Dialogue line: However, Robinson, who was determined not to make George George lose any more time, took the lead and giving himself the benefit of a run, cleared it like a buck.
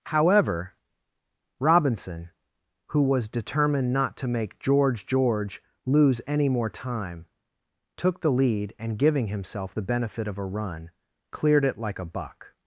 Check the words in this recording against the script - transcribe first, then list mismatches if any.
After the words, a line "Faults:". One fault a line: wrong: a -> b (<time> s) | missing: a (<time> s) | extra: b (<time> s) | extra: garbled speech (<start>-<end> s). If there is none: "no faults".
However, Robinson, who was determined not to make George George lose any more time, took the lead and giving himself the benefit of a run, cleared it like a buck.
Faults:
no faults